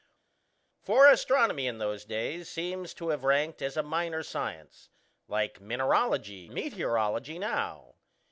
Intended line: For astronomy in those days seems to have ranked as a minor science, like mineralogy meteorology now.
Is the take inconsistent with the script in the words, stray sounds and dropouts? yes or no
no